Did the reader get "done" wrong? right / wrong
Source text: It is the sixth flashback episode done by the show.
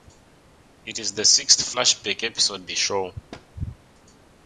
wrong